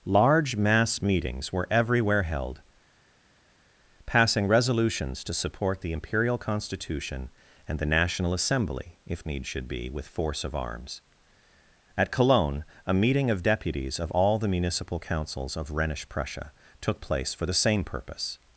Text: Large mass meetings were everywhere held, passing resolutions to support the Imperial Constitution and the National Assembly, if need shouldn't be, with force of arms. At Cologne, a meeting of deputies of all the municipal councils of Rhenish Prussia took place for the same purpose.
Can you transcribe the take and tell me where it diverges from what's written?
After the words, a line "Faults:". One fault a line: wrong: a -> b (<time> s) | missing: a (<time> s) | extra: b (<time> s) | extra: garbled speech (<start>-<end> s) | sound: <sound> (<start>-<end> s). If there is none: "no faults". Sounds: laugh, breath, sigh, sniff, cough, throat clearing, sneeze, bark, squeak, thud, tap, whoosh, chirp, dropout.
Large mass meetings were everywhere held, passing resolutions to support the Imperial Constitution and the National Assembly, if need should be, with force of arms. At Cologne, a meeting of deputies of all the municipal councils of Rhenish Prussia took place for the same purpose.
Faults:
wrong: shouldn't -> should (9.5 s)